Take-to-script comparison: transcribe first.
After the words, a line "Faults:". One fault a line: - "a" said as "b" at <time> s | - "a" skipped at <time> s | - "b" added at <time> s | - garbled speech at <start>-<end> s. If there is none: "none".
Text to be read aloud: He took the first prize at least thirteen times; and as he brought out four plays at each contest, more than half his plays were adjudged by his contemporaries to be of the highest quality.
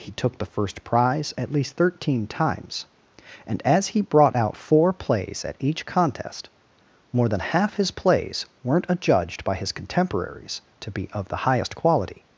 He took the first prize at least thirteen times; and as he brought out four plays at each contest, more than half his plays weren't adjudged by his contemporaries to be of the highest quality.
Faults:
- "were" said as "weren't" at 8.6 s